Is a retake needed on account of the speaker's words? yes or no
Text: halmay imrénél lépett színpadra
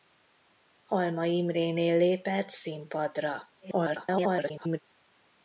yes